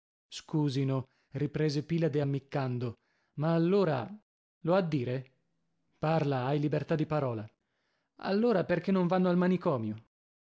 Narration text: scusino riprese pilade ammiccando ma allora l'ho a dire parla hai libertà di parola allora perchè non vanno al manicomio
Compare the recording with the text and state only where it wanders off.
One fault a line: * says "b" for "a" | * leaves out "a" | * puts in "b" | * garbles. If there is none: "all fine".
all fine